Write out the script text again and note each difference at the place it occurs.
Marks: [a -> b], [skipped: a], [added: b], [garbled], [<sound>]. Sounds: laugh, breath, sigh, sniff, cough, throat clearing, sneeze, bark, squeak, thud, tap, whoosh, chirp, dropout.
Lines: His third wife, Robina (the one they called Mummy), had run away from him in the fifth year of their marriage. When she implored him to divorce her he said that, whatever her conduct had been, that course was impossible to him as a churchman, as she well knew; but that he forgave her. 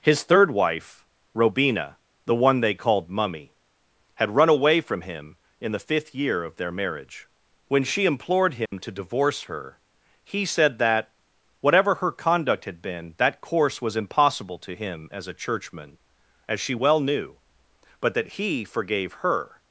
His third wife, Robina (the one they called Mummy), had run away from him in the fifth year of their marriage. When she implored him [dropout] to divorce her he said that, whatever her conduct had been, that course was impossible to him as a churchman, as she well knew; but that he forgave her.